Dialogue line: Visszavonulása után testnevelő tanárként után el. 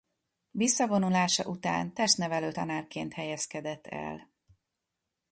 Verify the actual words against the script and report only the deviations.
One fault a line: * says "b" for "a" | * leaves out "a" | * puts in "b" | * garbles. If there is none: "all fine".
* says "helyezkedett" for "után"